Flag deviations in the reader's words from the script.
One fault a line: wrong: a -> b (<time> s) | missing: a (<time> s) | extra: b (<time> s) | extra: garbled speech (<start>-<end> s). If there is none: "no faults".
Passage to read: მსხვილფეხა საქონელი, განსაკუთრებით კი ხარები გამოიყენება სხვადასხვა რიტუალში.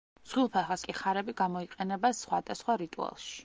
missing: საქონელი განსაკუთრებით (0.8 s)